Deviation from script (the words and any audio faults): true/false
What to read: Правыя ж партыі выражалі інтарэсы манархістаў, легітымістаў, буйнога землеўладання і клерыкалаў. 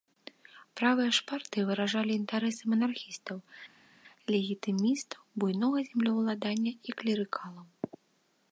false